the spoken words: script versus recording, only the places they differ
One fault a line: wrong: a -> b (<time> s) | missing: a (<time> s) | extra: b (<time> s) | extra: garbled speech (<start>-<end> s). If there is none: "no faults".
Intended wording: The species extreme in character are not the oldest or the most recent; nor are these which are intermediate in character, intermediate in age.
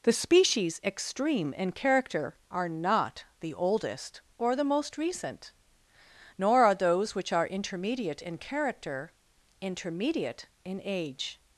wrong: these -> those (6.7 s)